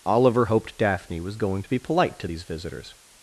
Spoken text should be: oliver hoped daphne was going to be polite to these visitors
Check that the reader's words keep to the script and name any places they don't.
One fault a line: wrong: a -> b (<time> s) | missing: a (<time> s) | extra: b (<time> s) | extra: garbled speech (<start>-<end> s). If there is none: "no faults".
no faults